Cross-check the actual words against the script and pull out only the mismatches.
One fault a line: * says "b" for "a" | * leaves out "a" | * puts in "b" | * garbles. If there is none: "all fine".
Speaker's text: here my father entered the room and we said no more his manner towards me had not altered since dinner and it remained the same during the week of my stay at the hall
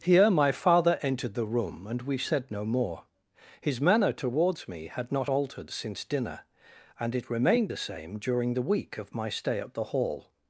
all fine